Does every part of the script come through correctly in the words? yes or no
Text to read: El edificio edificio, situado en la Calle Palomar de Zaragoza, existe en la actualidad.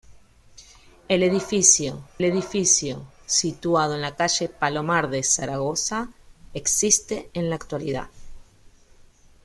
yes